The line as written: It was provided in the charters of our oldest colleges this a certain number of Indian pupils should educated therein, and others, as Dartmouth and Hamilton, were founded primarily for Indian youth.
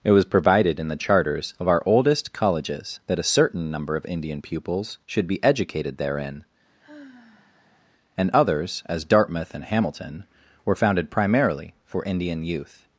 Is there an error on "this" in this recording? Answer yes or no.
yes